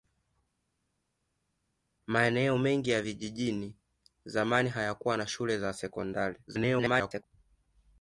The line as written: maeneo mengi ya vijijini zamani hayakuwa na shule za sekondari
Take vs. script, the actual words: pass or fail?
fail